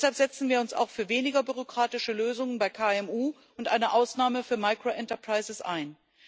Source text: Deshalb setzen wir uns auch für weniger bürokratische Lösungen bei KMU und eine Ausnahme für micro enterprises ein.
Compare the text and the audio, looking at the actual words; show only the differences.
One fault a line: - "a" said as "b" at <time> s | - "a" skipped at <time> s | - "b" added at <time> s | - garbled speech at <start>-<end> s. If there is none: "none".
none